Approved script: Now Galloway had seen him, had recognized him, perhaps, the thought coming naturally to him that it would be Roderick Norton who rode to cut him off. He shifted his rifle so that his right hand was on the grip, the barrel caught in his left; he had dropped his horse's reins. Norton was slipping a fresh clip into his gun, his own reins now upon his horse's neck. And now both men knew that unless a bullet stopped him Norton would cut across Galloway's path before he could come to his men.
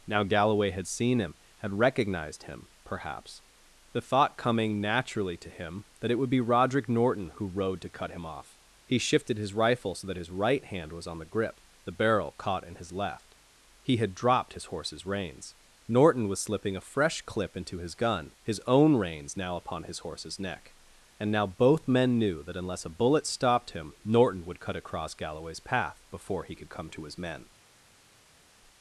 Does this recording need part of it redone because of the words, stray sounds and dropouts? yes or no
no